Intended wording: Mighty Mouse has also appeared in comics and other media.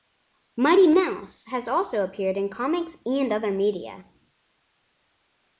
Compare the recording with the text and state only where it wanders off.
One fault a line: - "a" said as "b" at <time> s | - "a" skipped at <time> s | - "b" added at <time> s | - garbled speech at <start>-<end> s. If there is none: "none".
none